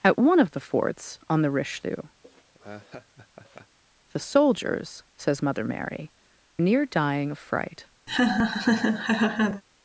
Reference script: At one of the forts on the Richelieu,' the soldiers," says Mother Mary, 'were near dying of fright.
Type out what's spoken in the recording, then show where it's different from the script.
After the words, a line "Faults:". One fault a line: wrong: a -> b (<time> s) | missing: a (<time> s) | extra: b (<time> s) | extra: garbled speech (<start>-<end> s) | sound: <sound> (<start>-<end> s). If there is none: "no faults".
At one of the forts on the Richelieu,' the soldiers," says Mother Mary, 'near dying of fright.
Faults:
sound: laugh (2.2-3.8 s)
missing: were (6.1 s)
sound: laugh (8.1-9.6 s)